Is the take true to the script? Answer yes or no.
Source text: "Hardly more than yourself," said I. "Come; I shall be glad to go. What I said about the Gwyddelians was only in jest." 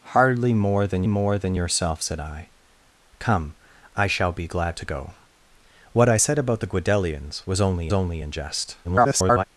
no